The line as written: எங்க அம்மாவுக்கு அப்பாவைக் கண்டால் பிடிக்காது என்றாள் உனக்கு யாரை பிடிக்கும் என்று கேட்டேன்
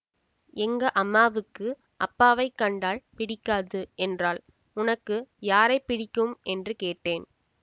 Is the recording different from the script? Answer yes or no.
no